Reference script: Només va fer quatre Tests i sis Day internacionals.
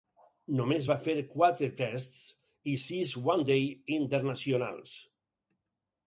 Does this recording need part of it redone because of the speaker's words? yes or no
yes